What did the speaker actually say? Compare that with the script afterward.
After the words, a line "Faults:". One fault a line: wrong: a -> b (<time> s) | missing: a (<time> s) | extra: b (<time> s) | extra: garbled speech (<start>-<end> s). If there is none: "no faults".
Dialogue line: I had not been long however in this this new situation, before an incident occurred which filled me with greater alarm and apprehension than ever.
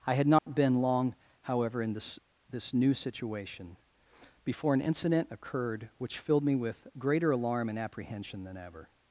I had not been long however in this this new situation, before an incident occurred which filled me with greater alarm and apprehension than ever.
Faults:
no faults